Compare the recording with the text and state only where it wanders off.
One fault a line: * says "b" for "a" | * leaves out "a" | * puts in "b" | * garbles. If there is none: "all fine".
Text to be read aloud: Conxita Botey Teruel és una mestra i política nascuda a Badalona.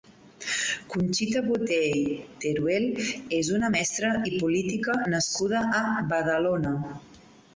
all fine